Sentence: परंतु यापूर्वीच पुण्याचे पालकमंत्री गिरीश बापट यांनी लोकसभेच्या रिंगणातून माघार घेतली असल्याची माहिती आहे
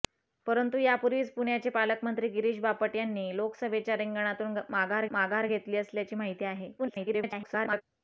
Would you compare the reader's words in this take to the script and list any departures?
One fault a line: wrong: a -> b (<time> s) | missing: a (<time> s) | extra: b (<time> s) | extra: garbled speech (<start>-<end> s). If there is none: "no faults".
extra: माघार (5.1 s)
extra: garbled speech (6.8-7.8 s)